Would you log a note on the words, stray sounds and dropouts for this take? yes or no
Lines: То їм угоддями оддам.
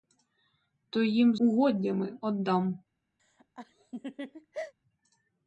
yes